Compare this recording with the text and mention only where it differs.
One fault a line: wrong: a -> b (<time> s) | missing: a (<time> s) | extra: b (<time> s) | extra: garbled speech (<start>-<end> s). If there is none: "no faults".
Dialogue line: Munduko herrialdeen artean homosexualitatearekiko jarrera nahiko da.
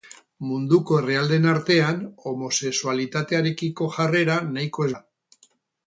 no faults